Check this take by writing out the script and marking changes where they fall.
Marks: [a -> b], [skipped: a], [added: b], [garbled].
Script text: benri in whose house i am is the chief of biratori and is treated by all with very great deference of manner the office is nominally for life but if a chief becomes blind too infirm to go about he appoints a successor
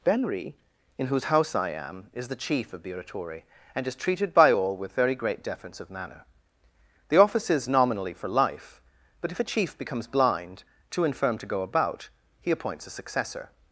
benri in whose house i am is the chief of biratori and is treated by all with very great deference of manner the office is nominally for life but if a chief becomes blind too infirm to go about he appoints a successor